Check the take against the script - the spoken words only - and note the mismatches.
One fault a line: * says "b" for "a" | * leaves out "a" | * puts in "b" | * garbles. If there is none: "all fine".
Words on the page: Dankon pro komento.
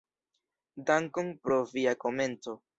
* puts in "via"